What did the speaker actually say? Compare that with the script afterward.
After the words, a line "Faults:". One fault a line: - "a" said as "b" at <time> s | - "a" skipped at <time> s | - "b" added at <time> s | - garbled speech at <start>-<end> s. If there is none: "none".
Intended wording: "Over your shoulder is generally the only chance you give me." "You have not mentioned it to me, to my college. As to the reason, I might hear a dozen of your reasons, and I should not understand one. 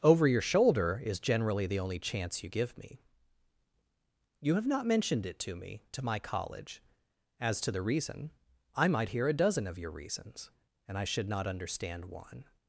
"Over your shoulder is generally the only chance you give me." "You have not mentioned it to me, to my college. As to the reason, I might hear a dozen of your reasons, and I should not understand one.
Faults:
none